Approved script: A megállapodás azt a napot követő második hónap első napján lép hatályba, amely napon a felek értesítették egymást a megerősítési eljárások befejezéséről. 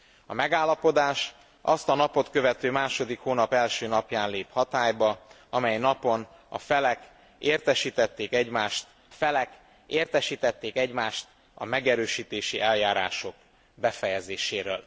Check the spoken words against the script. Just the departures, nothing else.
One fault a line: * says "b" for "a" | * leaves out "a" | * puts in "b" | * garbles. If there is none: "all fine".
* puts in "felek értesítették egymást"